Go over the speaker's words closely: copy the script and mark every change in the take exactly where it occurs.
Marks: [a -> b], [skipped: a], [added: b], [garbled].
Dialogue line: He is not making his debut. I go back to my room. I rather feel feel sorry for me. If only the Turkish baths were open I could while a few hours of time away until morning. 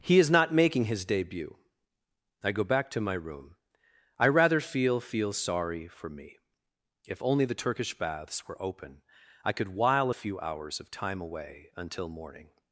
He is not making his debut. I go back to my room. I rather feel feel sorry for me. If only the Turkish baths were open I could while a few hours of time away until morning.